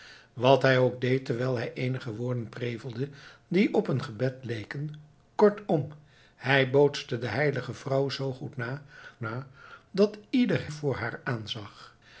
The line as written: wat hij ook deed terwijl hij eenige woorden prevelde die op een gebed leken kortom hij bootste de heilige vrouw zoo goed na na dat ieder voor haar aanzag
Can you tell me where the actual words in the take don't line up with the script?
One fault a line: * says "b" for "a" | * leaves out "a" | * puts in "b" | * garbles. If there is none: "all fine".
all fine